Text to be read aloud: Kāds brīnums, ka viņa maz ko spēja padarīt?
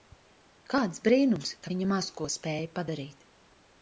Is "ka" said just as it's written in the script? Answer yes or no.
yes